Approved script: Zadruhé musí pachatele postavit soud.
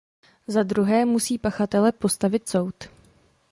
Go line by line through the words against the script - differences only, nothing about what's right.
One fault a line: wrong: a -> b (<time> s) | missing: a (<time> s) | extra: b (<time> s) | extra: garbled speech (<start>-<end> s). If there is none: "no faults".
no faults